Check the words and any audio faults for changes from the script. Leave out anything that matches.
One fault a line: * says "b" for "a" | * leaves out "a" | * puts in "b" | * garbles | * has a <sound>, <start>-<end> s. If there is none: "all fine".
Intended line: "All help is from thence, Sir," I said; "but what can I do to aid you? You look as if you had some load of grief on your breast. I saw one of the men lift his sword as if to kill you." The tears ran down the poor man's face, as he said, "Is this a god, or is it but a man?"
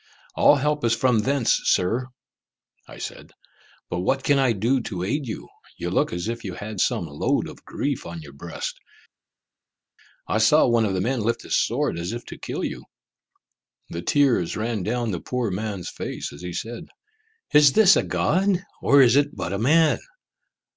all fine